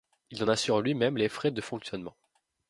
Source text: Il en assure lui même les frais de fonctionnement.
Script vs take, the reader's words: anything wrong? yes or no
no